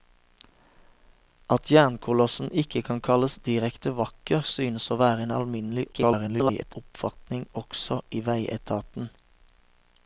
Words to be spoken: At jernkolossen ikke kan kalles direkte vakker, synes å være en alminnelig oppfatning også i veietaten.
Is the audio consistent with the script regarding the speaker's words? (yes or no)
no